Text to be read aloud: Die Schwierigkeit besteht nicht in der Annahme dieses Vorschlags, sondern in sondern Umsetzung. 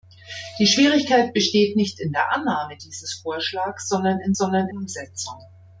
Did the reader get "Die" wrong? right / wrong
right